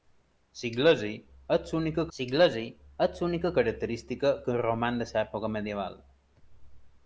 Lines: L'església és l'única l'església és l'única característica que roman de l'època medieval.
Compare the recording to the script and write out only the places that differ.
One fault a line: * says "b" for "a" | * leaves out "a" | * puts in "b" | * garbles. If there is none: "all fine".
all fine